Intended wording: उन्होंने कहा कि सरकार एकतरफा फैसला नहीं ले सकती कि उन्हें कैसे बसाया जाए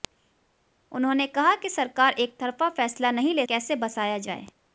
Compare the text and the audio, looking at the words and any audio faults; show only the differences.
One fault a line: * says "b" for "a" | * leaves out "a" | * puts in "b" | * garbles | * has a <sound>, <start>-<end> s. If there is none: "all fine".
* leaves out "सकती कि उन्हें"